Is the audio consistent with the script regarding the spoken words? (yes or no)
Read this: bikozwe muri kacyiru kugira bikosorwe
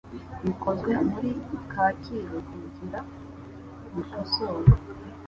yes